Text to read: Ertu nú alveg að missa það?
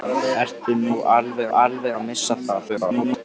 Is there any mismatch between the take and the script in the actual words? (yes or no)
yes